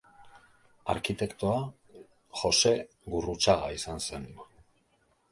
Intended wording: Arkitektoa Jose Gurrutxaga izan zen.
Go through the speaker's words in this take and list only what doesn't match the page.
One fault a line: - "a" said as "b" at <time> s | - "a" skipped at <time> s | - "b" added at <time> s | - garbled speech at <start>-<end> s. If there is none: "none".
none